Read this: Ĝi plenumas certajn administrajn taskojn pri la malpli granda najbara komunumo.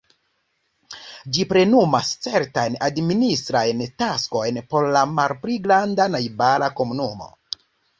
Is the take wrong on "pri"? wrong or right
wrong